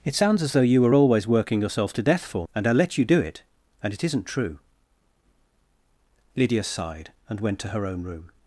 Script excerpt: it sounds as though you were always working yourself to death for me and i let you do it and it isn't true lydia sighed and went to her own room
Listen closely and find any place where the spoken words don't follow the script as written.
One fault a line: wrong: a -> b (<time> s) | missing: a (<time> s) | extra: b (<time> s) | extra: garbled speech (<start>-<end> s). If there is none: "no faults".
missing: me (2.5 s)